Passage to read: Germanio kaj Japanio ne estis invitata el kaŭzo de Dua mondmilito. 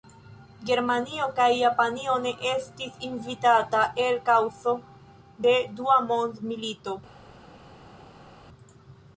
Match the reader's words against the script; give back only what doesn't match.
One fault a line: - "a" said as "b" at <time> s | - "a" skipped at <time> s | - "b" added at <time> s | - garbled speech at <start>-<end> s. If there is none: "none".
none